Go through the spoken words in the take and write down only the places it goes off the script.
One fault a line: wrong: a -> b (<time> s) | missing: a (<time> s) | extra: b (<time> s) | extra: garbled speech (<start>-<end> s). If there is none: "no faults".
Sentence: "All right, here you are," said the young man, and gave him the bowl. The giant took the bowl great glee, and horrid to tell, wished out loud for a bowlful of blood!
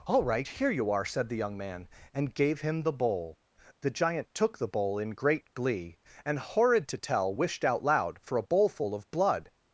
extra: in (5.0 s)